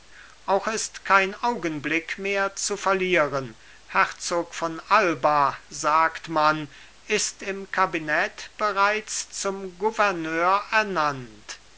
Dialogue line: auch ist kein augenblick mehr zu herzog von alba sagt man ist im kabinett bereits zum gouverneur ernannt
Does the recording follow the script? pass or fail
fail